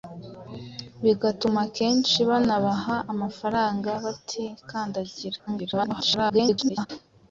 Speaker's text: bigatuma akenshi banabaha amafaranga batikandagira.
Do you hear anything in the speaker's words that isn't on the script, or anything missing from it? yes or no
yes